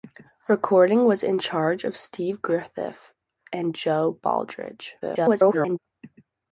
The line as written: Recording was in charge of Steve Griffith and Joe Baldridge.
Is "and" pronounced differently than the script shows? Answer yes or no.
no